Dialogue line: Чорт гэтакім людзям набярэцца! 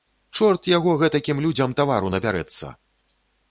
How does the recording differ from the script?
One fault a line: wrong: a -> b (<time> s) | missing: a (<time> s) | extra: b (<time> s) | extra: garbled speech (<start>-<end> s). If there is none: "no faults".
extra: яго (0.8 s)
extra: тавару (1.8 s)